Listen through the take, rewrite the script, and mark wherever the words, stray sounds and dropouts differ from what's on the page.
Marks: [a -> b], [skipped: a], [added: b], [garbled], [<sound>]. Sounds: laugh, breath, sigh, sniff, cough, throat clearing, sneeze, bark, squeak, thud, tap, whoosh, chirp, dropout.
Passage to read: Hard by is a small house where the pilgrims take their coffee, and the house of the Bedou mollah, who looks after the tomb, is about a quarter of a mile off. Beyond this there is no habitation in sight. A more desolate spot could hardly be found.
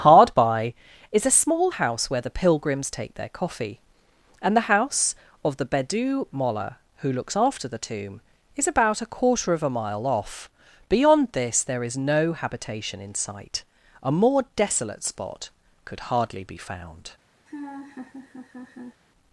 Hard by is a small house where the pilgrims take their coffee, and the house of the Bedou mollah, who looks after the tomb, is about a quarter of a mile off. Beyond this there is no habitation in sight. A more desolate spot could hardly be found. [laugh]